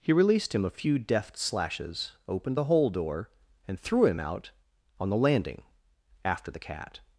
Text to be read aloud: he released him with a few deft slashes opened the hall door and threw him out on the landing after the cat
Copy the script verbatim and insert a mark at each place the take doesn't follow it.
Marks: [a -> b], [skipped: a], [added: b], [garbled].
he released him [skipped: with] a few deft slashes opened the [hall -> hole] door and threw him out on the landing after the cat